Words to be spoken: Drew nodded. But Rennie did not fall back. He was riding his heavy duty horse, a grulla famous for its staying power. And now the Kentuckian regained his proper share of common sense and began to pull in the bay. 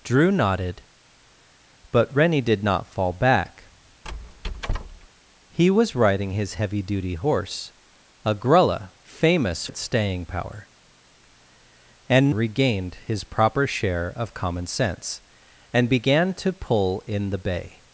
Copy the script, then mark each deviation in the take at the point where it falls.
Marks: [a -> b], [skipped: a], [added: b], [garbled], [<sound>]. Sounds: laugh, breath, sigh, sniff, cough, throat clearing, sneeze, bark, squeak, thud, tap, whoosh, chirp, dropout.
Drew nodded. But Rennie did not fall back. [squeak] He was riding his heavy duty horse, a grulla famous [skipped: for] its staying power. And [skipped: now the Kentuckian] regained his proper share of common sense and began to pull in the bay.